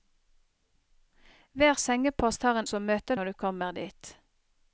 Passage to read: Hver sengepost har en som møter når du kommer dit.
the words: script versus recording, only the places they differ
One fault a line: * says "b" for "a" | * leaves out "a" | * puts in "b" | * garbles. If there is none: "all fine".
all fine